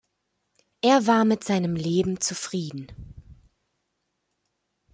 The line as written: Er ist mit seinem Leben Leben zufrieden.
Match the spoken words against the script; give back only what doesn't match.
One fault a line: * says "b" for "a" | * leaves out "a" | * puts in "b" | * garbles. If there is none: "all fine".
* says "war" for "ist"
* leaves out "Leben"